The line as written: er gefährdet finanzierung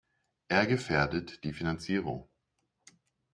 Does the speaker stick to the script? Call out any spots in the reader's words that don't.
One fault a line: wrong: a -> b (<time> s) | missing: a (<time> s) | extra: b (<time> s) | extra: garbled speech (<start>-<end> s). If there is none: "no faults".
extra: die (1.4 s)